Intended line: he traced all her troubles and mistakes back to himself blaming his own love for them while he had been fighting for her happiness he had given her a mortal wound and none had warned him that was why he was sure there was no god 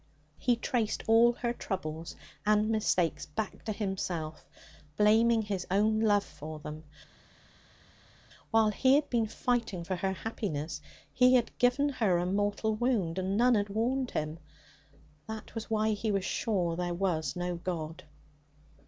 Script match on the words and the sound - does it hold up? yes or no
yes